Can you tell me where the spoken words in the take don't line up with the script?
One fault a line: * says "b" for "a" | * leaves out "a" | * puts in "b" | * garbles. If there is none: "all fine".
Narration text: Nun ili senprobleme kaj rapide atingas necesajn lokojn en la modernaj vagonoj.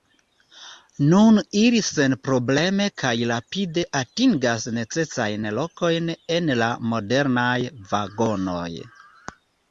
all fine